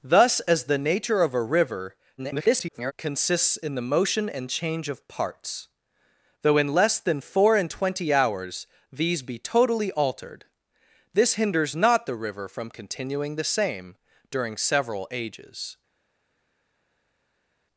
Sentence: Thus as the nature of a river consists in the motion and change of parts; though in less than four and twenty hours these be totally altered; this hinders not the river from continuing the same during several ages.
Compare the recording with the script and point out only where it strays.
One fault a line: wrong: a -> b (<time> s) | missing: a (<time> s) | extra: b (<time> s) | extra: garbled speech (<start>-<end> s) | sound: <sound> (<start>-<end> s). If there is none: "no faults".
extra: garbled speech (2.2-2.9 s)